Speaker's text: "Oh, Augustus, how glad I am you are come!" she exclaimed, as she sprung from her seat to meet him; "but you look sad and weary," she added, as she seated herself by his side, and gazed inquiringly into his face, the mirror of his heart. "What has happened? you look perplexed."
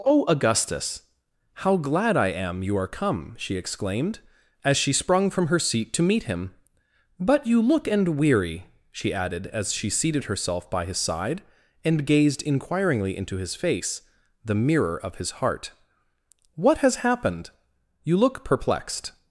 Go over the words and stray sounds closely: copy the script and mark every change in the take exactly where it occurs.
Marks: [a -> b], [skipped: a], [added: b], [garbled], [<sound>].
"Oh, Augustus, how glad I am you are come!" she exclaimed, as she sprung from her seat to meet him; "but you look [skipped: sad] and weary," she added, as she seated herself by his side, and gazed inquiringly into his face, the mirror of his heart. "What has happened? you look perplexed."